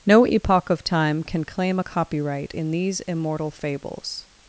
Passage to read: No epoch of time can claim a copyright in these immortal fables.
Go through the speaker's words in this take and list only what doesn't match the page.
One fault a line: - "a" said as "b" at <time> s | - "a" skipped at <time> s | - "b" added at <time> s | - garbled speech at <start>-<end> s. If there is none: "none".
none